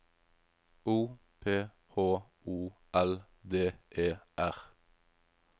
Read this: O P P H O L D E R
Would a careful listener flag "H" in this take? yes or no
yes